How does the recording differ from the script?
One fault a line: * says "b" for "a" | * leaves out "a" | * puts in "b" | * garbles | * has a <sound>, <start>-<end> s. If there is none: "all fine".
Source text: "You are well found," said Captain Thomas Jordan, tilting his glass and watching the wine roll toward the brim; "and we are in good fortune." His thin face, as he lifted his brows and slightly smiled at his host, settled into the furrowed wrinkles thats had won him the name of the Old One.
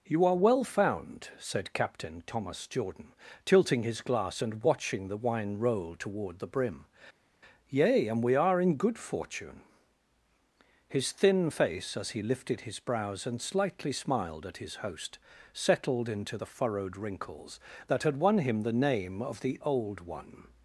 * puts in "yea"
* says "that" for "thats"